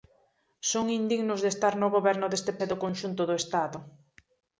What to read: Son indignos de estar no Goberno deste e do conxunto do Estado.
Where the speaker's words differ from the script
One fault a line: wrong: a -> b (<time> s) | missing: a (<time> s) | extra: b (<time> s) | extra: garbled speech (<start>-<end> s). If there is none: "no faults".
no faults